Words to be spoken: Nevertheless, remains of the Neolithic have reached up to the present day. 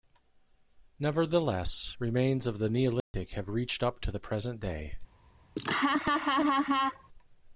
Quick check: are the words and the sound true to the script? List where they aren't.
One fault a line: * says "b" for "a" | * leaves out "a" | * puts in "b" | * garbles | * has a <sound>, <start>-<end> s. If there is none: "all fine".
* has a dropout, 3.0-3.1 s
* has a laugh, 5.6-7.1 s